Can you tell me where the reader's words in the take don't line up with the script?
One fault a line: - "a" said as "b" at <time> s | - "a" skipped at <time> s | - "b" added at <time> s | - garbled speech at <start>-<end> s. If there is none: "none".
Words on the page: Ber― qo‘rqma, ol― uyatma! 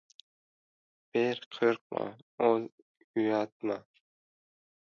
none